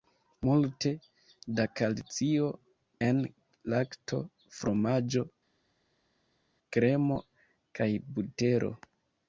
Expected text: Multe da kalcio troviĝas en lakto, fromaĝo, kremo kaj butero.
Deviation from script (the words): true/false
true